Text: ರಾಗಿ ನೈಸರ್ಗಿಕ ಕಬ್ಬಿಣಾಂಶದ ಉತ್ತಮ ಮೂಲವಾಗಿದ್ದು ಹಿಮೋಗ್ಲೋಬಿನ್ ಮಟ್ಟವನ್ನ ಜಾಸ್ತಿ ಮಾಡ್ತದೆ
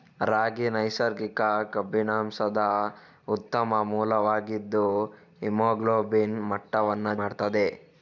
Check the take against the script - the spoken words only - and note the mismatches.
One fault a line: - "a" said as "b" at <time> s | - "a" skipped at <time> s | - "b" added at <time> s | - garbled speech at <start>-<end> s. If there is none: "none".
- "ಜಾಸ್ತಿ" skipped at 7.1 s